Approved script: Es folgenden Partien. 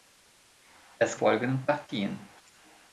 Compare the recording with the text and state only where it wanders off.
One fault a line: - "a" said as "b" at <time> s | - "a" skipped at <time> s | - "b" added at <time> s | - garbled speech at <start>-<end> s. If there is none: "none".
none